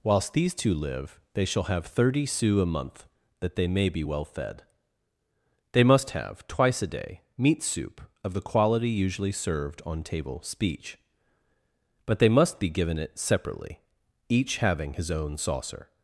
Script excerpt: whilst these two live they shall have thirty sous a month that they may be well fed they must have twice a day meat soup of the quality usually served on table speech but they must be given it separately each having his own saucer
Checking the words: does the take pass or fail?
pass